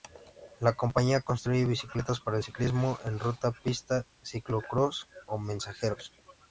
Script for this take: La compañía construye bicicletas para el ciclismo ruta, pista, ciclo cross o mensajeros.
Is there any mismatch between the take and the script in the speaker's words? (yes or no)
yes